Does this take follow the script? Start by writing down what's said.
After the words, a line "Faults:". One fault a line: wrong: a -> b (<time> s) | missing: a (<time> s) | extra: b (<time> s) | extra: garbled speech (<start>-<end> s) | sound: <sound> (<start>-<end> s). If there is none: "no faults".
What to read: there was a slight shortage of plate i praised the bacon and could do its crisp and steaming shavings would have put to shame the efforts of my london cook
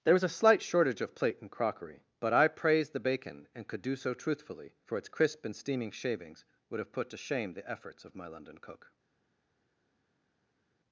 there was a slight shortage of plate and crockery but i praised the bacon and could do so truthfully for its crisp and steaming shavings would have put to shame the efforts of my london cook
Faults:
extra: and crockery but (1.4 s)
extra: so truthfully for (4.0 s)